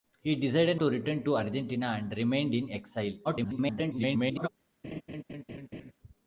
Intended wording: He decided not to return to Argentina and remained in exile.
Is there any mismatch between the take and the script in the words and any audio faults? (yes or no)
yes